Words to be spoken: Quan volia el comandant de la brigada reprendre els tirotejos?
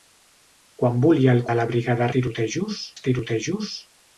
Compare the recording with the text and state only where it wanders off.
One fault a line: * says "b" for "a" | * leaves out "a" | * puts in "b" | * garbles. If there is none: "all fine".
* leaves out "comandant"
* says "tirotejos" for "reprendre"